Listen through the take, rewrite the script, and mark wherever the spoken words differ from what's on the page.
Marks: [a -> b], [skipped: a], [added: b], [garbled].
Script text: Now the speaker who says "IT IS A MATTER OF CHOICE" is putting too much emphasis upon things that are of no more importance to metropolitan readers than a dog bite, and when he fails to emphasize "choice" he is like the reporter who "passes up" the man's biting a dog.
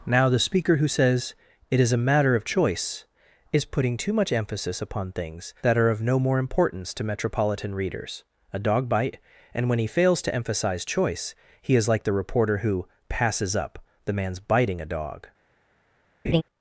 Now the speaker who says "IT IS A MATTER OF CHOICE" is putting too much emphasis upon things that are of no more importance to metropolitan readers [skipped: than] a dog bite, and when he fails to emphasize "choice" he is like the reporter who "passes up" the man's biting a dog.